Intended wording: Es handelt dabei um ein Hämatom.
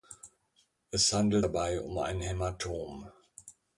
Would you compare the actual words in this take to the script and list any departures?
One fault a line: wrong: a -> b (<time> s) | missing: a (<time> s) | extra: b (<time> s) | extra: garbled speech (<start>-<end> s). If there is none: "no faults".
no faults